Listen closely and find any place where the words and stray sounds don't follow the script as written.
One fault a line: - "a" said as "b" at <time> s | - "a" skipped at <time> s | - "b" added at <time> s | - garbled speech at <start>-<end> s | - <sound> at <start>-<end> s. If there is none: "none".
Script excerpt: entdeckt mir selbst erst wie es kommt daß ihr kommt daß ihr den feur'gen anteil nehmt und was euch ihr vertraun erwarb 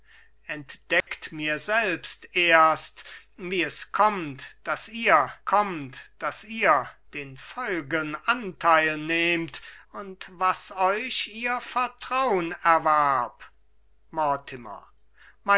- dropout at 1.0-1.1 s